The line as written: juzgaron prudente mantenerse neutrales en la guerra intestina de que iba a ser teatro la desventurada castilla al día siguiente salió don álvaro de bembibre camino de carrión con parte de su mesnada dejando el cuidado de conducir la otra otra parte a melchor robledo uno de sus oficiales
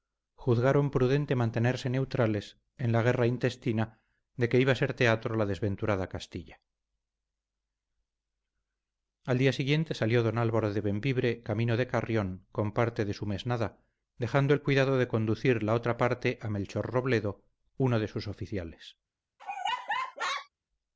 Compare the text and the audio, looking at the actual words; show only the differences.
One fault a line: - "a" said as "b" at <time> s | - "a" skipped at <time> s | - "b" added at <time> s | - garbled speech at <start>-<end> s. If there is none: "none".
- "otra" skipped at 16.0 s